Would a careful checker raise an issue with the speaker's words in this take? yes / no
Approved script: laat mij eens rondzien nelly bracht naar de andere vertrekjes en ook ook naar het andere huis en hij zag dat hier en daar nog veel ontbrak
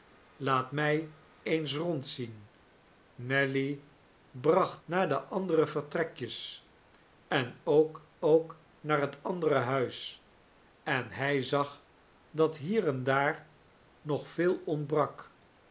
no